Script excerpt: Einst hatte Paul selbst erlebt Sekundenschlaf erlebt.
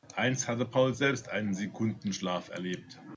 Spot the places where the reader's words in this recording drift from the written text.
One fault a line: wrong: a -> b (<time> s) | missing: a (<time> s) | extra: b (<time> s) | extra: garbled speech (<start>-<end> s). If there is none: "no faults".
wrong: erlebt -> einen (1.3 s)